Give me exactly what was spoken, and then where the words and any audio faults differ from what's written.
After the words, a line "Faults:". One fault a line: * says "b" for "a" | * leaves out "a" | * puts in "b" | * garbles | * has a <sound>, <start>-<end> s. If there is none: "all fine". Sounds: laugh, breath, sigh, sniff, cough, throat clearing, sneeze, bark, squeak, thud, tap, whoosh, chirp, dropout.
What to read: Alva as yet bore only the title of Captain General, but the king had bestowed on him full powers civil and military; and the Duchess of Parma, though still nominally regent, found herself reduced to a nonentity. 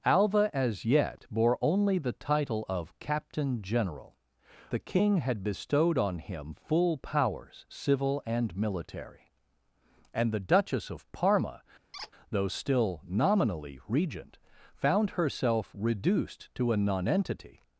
Alva as yet bore only the title of Captain General, the king had bestowed on him full powers civil and military; and the Duchess of Parma, though still nominally regent, found herself reduced to a nonentity.
Faults:
* leaves out "but"
* has a squeak, 11.9-12.1 s